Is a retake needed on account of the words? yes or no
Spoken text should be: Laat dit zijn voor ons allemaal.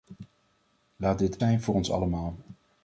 no